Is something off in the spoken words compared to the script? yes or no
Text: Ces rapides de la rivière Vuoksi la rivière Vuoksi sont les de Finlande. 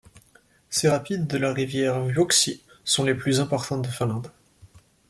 yes